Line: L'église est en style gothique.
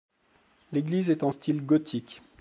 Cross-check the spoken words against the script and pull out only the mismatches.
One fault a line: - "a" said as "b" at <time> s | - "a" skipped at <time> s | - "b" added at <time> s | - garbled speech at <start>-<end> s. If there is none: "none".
none